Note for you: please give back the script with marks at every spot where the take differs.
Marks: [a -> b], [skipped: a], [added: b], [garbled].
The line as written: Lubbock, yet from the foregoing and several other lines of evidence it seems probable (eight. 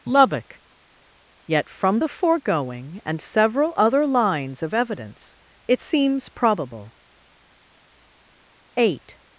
Lubbock, yet from the foregoing and several other lines of evidence it seems probable (eight.